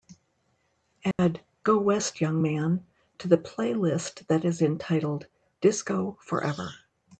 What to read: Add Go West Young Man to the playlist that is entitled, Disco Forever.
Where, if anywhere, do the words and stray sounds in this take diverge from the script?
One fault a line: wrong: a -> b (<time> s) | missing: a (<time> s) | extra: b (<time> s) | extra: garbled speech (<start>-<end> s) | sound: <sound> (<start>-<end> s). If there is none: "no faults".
sound: dropout (1.1-1.2 s)